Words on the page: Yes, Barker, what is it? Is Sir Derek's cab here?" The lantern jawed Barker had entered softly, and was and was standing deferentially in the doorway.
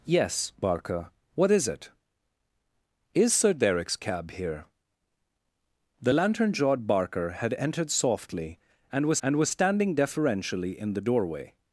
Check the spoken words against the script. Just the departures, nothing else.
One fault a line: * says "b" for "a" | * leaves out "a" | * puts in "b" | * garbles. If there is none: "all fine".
all fine